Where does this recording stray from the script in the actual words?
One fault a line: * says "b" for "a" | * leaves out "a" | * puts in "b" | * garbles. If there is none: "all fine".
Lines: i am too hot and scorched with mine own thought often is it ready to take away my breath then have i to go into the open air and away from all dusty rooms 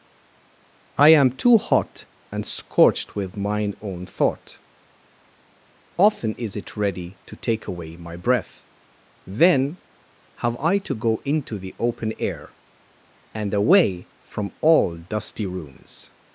all fine